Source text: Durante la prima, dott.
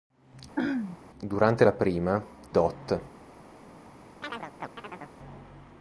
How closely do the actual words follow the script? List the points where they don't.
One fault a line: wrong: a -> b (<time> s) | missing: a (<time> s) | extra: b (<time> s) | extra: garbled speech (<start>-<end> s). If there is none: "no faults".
no faults